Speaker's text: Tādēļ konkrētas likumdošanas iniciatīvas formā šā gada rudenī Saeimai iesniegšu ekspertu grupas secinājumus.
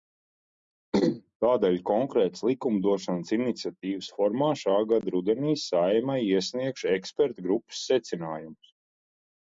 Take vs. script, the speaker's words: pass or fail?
pass